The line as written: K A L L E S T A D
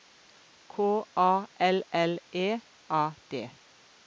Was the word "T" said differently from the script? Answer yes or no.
yes